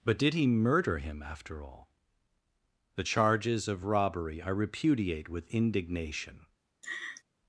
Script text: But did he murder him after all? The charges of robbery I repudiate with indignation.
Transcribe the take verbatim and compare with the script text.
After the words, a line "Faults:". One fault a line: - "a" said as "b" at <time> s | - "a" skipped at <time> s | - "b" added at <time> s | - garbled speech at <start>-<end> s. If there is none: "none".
But did he murder him after all? The charges of robbery I repudiate with indignation.
Faults:
none